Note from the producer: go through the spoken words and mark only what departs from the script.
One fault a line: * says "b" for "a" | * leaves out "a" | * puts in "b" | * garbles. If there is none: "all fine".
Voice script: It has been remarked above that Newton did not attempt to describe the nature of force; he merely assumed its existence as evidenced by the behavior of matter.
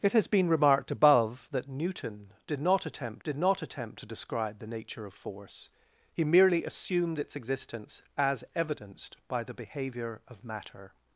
* puts in "did not attempt"